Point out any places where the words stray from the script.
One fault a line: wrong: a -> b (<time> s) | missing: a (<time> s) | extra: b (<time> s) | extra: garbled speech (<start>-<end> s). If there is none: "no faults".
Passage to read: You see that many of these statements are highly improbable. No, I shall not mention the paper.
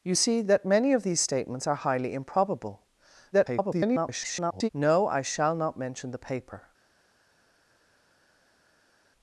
extra: garbled speech (3.3-4.7 s)